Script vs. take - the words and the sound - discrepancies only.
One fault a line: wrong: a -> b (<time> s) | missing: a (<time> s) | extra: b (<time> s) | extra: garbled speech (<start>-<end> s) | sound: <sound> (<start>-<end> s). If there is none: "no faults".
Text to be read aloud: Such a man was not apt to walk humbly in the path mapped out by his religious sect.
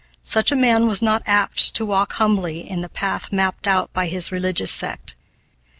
no faults